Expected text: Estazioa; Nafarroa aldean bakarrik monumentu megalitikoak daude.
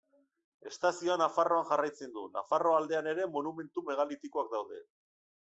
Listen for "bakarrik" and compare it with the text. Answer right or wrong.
wrong